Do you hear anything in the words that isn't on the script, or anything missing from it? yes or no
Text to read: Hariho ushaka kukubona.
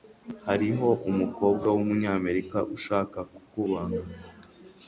yes